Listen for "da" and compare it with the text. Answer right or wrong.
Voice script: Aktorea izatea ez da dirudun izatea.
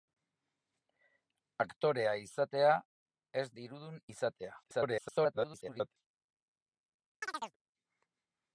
wrong